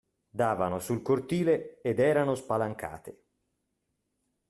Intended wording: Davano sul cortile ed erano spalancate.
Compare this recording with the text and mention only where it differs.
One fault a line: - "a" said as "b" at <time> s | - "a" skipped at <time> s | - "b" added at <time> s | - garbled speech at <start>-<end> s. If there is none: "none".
none